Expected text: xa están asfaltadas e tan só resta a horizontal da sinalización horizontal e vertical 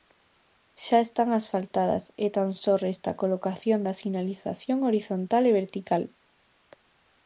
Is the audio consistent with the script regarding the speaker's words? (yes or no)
no